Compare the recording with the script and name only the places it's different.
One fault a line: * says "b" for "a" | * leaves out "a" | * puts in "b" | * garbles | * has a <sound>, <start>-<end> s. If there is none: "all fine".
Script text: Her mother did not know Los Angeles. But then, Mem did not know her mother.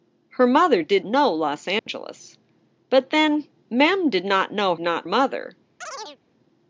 * leaves out "not"
* has a dropout, 1.8-1.9 s
* says "not" for "her"
* has a chirp, 5.8-6.2 s